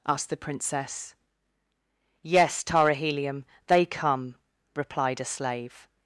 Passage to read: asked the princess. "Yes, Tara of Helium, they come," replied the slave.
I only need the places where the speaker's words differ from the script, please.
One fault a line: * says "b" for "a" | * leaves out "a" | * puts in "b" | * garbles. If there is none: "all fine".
* leaves out "of"
* says "a" for "the"